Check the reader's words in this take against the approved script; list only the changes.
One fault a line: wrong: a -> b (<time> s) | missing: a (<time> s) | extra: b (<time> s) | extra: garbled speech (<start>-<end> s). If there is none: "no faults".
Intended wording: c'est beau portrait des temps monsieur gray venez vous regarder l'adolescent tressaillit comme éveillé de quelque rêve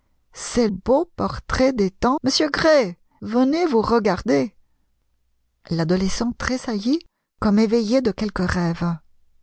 no faults